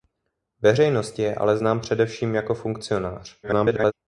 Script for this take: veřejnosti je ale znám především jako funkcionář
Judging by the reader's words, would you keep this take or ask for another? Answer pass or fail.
fail